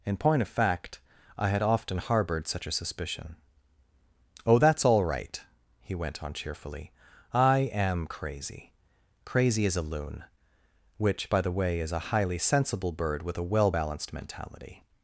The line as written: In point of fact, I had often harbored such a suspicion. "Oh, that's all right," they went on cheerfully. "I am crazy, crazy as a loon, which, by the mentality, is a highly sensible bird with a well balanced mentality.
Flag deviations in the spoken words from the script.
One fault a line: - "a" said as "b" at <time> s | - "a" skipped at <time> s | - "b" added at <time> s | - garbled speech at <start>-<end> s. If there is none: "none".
- "they" said as "he" at 5.8 s
- "mentality" said as "way" at 11.5 s